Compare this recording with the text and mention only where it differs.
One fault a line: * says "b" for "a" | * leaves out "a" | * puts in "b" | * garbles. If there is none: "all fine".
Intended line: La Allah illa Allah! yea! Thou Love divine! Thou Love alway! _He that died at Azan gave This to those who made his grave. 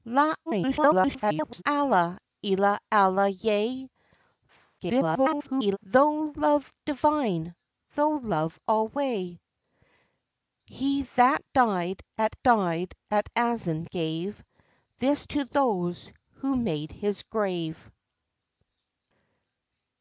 * garbles
* garbles
* puts in "died at"